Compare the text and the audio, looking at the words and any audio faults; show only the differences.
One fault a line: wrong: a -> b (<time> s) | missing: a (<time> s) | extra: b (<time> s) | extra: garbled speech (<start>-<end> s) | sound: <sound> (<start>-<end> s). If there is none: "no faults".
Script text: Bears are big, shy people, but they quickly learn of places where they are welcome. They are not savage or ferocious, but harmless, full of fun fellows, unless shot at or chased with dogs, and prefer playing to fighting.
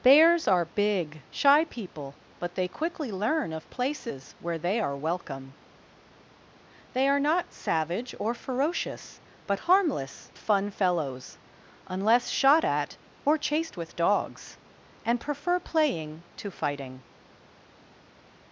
missing: full of (10.3 s)